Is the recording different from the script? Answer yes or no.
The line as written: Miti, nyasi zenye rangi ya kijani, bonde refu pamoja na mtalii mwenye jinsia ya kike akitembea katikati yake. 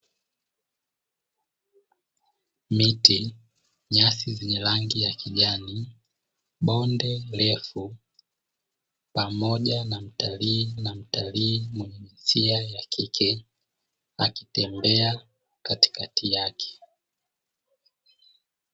yes